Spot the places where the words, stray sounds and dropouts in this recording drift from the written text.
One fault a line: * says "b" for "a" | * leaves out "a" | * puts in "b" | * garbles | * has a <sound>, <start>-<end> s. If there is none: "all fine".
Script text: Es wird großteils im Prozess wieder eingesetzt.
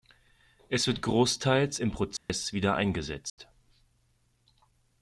* has a dropout, 2.2-2.3 s
* has a dropout, 3.3-3.4 s